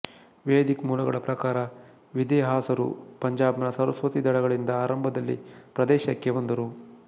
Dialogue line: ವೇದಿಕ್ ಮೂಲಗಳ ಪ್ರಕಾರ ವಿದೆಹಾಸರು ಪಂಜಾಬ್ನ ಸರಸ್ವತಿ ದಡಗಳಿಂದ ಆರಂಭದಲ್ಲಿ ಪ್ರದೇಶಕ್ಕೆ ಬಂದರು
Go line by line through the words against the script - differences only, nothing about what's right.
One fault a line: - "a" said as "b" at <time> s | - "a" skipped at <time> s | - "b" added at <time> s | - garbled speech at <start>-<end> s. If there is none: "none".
none